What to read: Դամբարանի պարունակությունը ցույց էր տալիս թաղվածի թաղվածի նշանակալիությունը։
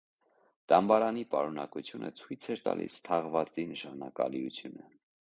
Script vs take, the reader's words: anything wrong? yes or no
yes